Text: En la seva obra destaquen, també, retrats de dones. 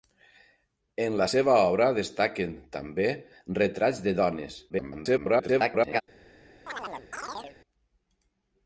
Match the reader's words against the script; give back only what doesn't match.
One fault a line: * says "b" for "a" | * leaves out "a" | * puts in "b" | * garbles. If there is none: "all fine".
* garbles